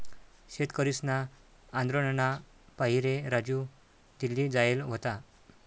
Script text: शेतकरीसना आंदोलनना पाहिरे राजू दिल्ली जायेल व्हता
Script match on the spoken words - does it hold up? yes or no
yes